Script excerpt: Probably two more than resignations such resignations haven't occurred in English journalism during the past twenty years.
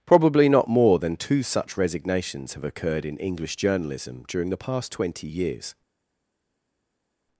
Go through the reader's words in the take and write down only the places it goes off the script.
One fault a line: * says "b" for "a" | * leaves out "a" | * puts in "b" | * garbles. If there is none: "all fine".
* says "not" for "two"
* says "two" for "resignations"
* says "have" for "haven't"